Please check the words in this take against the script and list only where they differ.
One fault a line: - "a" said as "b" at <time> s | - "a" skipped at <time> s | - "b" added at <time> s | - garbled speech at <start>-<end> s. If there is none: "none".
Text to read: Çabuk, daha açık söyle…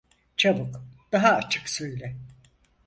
none